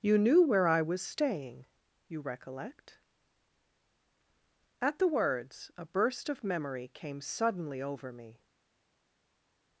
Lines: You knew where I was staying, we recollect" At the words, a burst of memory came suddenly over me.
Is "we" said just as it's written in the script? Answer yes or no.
no